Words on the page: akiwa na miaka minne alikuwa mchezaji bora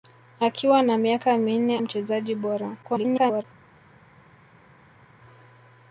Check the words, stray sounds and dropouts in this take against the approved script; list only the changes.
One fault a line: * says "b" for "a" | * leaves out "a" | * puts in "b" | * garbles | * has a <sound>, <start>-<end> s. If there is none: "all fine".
* leaves out "alikuwa"
* garbles